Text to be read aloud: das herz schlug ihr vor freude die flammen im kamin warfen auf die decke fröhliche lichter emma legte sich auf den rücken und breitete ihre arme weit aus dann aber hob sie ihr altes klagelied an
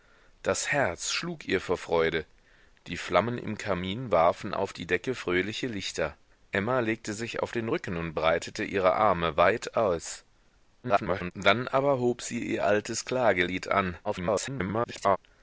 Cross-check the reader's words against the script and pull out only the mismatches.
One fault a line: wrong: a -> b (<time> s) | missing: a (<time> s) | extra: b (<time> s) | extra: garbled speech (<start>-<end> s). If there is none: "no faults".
extra: garbled speech (10.8-11.3 s)
extra: garbled speech (14.0-15.2 s)